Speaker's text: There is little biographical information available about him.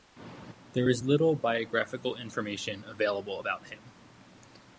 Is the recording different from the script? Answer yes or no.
no